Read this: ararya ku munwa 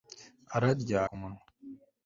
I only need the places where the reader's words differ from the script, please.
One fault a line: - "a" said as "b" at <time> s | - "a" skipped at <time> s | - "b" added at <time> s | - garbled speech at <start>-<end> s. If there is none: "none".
none